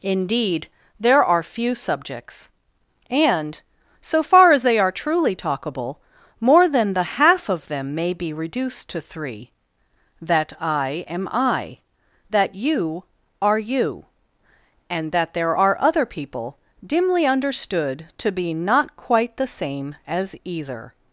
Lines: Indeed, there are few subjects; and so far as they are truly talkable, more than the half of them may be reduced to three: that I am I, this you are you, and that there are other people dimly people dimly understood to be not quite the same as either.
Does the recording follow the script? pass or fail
fail